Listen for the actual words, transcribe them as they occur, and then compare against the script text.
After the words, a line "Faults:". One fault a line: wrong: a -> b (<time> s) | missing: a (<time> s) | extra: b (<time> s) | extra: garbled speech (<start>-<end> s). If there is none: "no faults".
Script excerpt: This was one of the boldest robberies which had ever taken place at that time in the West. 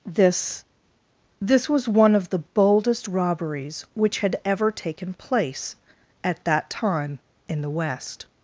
This this was one of the boldest robberies which had ever taken place at that time in the West.
Faults:
extra: this (1.4 s)